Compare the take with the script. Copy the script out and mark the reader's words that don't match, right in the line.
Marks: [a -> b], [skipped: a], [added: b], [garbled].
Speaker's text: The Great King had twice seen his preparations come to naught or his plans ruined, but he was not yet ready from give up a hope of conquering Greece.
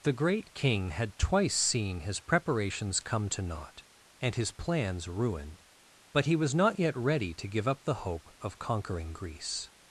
The Great King had twice seen his preparations come to naught [or -> and] his plans ruined, but he was not yet ready [from -> to] give up [a -> the] hope of conquering Greece.